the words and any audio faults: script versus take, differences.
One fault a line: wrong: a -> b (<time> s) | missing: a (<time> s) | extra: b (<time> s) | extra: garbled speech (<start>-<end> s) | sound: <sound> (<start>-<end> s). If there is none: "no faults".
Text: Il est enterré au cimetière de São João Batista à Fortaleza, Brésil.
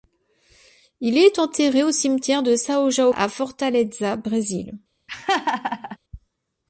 missing: Batista (3.1 s)
sound: laugh (5.1-6.0 s)